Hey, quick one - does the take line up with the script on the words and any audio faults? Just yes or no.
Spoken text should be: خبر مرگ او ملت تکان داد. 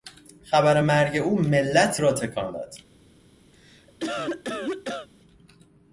no